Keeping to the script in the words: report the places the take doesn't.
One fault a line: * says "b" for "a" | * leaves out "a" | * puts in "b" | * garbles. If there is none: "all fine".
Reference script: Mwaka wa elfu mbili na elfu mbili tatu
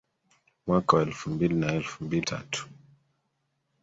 all fine